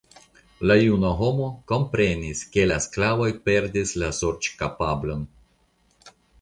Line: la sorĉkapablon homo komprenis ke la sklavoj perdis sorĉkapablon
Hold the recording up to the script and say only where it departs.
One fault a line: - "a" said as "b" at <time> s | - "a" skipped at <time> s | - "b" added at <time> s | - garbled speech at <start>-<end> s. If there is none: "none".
- "sorĉkapablon" said as "juna" at 0.8 s
- "la" added at 4.1 s